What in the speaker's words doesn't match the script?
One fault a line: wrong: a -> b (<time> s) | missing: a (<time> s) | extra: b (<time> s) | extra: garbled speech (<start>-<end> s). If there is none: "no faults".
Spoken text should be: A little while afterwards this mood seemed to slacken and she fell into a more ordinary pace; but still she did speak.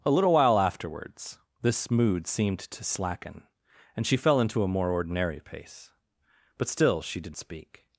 no faults